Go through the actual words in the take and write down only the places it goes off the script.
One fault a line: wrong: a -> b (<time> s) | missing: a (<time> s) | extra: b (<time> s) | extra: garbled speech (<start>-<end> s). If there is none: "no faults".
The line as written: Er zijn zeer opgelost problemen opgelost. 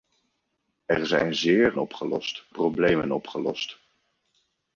no faults